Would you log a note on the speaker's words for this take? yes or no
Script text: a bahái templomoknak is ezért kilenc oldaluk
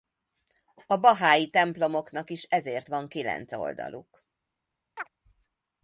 yes